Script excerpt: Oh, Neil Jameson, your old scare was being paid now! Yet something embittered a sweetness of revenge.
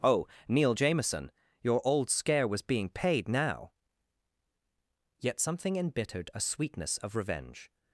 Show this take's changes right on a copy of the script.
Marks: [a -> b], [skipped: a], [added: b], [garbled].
Oh, Neil Jameson, your old scare was being paid now! Yet something embittered a sweetness of revenge.